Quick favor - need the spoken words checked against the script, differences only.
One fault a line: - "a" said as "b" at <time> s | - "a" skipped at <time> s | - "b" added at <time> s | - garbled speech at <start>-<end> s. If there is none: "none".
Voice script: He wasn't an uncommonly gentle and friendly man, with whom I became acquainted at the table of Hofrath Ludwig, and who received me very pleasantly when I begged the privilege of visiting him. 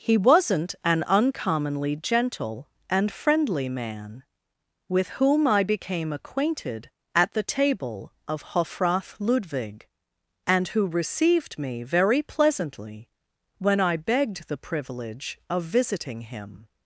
none